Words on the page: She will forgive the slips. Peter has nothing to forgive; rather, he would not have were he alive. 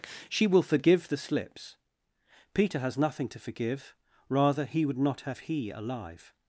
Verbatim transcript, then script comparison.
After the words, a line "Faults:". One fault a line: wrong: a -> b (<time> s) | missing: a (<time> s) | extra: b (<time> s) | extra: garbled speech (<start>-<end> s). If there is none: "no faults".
She will forgive the slips. Peter has nothing to forgive; rather, he would not have he alive.
Faults:
missing: were (5.4 s)